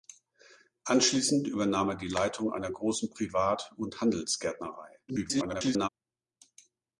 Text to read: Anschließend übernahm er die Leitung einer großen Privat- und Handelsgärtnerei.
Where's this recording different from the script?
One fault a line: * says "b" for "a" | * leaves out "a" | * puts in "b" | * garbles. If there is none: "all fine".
* garbles